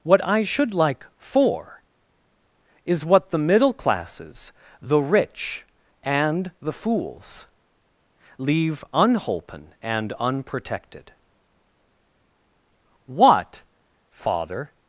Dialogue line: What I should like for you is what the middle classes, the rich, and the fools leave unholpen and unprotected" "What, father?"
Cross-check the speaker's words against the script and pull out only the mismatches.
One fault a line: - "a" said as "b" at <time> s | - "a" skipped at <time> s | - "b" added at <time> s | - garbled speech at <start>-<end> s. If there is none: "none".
- "you" skipped at 1.8 s